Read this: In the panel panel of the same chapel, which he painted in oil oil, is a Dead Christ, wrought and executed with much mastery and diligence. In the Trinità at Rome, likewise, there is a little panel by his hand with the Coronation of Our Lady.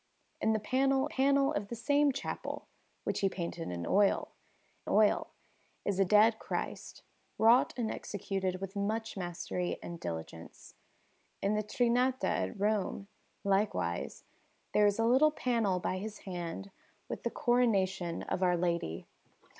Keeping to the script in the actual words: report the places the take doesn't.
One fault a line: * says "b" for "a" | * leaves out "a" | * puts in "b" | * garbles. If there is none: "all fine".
all fine